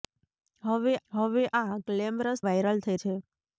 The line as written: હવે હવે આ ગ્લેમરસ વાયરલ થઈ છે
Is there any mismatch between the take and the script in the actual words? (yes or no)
no